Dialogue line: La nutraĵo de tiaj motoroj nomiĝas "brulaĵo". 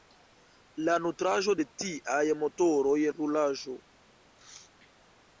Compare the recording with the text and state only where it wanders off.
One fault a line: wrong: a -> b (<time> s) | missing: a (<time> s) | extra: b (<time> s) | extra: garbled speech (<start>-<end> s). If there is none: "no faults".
missing: nomiĝas (2.9 s)